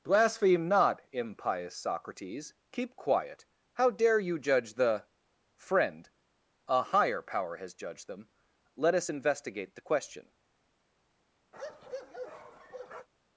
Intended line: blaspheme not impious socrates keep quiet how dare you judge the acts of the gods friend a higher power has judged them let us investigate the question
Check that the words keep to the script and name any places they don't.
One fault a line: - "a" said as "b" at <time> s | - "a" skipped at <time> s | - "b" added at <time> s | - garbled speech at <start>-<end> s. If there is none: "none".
- "acts of the gods" skipped at 5.1 s